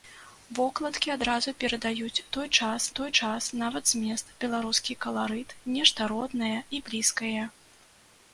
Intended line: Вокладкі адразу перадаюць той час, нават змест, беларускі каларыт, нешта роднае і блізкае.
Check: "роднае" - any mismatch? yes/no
no